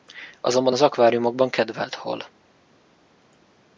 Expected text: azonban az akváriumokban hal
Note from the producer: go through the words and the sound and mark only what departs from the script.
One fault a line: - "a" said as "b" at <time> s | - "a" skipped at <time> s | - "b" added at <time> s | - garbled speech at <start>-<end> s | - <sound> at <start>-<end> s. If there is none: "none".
- "kedvelt" added at 1.5 s